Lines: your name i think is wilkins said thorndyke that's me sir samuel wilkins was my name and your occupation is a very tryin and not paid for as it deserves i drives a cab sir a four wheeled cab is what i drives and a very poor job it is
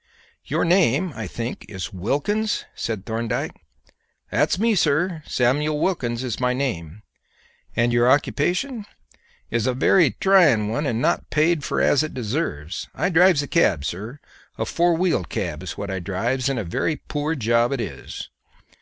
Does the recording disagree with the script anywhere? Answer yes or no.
yes